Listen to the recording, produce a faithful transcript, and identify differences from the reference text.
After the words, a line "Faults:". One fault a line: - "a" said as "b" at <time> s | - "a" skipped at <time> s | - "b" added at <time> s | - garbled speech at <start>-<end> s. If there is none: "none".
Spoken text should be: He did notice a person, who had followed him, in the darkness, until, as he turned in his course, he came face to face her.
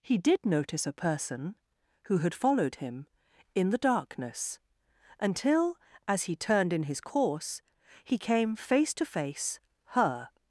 He did notice a person, who had followed him, in the darkness, until, as he turned in his course, he came face to face her.
Faults:
none